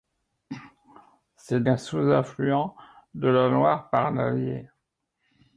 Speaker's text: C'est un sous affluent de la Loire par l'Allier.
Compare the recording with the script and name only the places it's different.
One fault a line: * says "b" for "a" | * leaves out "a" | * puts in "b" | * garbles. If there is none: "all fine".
all fine